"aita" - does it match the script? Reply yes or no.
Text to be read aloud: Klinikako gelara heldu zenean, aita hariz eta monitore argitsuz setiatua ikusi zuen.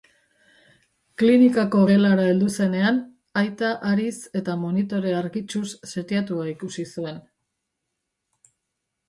yes